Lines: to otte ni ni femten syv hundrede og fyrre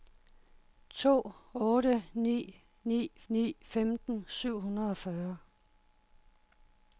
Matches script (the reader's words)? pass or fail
fail